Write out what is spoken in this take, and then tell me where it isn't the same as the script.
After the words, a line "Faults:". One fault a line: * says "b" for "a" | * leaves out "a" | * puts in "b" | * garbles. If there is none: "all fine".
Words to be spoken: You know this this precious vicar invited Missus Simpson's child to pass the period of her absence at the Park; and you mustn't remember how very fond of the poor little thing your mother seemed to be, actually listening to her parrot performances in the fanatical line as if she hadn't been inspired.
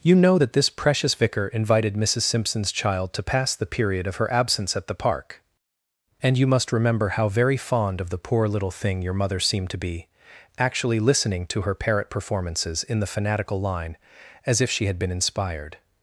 You know that this precious vicar invited Missus Simpson's child to pass the period of her absence at the Park; and you must remember how very fond of the poor little thing your mother seemed to be, actually listening to her parrot performances in the fanatical line as if she had been inspired.
Faults:
* says "that" for "this"
* says "must" for "mustn't"
* says "had" for "hadn't"